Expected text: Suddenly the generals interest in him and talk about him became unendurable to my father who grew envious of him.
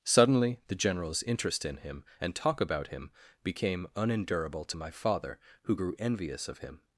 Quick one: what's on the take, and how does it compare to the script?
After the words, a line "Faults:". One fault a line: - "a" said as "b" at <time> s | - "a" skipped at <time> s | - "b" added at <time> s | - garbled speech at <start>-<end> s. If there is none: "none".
Suddenly the generals interest in him and talk about him became unendurable to my father who grew envious of him.
Faults:
none